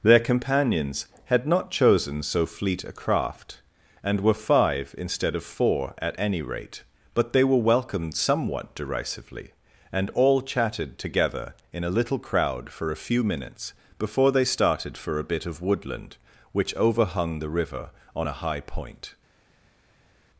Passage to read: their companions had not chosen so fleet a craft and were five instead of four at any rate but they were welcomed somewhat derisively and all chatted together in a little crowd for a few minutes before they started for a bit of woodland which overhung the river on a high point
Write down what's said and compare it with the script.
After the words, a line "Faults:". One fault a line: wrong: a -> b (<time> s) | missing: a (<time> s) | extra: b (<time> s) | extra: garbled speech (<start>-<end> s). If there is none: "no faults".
their companions had not chosen so fleet a craft and were five instead of four at any rate but they were welcomed somewhat derisively and all chatted together in a little crowd for a few minutes before they started for a bit of woodland which overhung the river on a high point
Faults:
no faults